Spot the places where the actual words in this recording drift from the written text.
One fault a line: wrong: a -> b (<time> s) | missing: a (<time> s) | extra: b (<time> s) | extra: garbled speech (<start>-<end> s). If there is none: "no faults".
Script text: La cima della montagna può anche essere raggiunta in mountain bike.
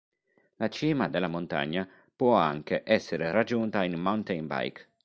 no faults